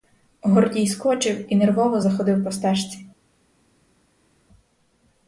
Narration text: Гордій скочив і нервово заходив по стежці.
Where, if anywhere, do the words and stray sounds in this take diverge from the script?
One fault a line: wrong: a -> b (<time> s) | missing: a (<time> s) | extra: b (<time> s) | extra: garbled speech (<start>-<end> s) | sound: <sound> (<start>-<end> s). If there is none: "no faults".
no faults